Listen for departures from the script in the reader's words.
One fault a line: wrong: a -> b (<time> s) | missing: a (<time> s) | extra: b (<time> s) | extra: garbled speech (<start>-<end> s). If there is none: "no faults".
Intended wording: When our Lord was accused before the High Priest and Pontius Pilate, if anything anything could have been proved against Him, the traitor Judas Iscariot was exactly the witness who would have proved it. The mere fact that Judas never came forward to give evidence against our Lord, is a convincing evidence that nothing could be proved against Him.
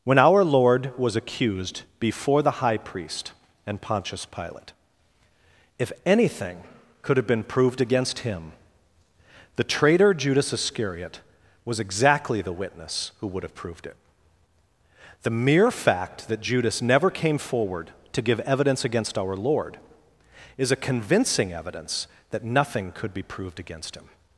missing: anything (6.6 s)